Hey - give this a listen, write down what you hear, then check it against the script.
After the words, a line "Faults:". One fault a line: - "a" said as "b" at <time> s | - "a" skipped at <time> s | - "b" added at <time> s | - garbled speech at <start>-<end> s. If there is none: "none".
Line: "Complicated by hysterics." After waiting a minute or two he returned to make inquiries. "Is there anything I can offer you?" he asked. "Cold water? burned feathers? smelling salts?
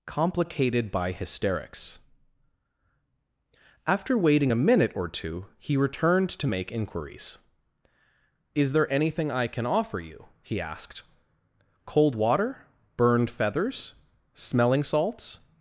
"Complicated by hysterics." After waiting a minute or two he returned to make inquiries. "Is there anything I can offer you?" he asked. "Cold water? burned feathers? smelling salts?
Faults:
none